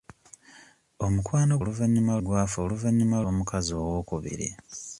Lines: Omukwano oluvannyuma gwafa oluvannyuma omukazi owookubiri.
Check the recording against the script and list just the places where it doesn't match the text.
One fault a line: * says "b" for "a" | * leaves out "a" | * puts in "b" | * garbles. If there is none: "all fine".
all fine